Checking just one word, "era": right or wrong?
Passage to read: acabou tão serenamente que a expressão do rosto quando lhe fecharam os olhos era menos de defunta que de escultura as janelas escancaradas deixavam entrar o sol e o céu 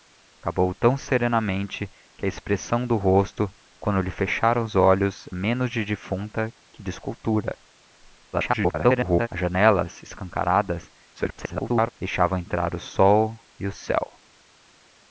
wrong